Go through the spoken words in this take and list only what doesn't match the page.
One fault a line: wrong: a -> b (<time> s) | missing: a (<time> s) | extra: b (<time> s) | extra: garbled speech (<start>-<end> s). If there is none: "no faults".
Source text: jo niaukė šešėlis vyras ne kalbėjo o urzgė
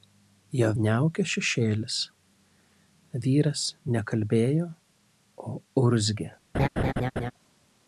no faults